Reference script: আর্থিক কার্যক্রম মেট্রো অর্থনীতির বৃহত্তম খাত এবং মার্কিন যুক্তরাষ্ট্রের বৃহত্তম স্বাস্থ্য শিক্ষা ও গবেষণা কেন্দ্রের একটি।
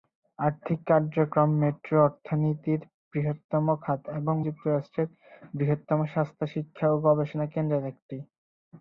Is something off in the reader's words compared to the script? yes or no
yes